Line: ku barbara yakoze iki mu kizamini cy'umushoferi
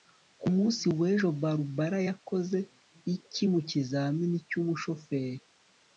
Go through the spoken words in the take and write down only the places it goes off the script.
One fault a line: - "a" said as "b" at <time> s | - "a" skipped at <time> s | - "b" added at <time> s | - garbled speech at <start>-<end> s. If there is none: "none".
- "munsi w'ejo" added at 0.6 s